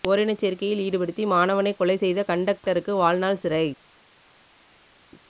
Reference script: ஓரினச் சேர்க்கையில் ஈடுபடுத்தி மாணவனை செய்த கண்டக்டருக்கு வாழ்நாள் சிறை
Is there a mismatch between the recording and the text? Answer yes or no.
yes